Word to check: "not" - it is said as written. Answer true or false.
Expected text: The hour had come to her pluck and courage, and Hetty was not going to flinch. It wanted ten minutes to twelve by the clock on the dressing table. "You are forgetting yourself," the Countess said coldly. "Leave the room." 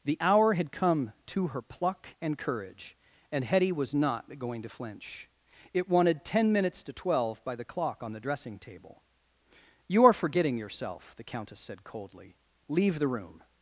true